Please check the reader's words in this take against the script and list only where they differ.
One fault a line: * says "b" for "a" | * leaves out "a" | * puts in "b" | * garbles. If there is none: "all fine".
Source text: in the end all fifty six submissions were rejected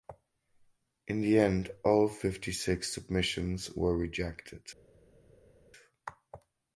all fine